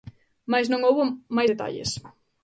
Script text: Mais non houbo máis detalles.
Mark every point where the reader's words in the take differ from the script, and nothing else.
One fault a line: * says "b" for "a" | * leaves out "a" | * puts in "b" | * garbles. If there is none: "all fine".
all fine